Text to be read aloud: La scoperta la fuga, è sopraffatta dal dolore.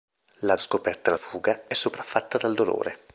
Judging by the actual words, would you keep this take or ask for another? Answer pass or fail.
pass